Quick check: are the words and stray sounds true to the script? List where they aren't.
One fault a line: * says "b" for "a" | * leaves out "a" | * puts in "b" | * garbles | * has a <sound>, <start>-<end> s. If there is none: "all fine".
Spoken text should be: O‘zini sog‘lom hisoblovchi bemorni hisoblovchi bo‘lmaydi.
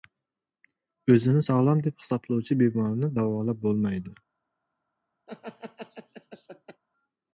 * puts in "deb"
* says "davolab" for "hisoblovchi"
* has a laugh, 5.3-6.8 s